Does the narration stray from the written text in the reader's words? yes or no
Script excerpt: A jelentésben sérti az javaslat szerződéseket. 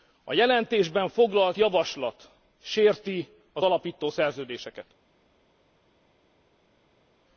yes